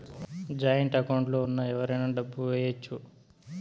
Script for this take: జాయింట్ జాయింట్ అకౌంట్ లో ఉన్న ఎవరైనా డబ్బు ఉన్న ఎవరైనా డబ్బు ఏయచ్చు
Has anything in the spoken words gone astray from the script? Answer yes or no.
yes